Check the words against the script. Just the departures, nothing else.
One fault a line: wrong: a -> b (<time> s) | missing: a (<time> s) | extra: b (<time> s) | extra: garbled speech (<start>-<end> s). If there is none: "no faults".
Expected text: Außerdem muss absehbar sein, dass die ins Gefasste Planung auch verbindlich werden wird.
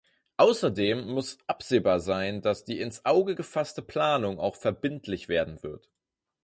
extra: Auge (3.0 s)